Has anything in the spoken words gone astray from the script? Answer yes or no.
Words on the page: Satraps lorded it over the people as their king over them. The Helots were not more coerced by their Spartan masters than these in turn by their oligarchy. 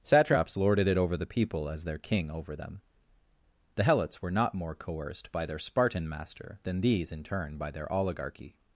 yes